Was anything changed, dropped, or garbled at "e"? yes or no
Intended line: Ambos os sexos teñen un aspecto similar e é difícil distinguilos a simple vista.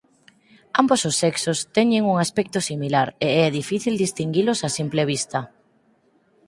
no